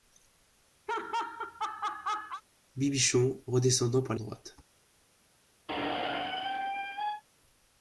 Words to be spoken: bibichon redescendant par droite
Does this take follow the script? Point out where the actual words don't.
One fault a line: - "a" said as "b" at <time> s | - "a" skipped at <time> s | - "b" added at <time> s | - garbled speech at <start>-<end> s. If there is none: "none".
none